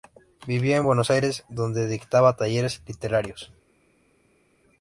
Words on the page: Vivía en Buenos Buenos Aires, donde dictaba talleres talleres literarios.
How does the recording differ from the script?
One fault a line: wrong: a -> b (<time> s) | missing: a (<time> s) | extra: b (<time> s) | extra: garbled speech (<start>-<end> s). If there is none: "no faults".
missing: Buenos (1.1 s)
missing: talleres (2.8 s)